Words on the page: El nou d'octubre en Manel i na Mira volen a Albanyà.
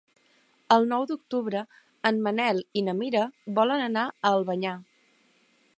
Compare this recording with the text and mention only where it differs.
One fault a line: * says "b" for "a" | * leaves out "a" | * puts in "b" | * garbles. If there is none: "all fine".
* puts in "anar"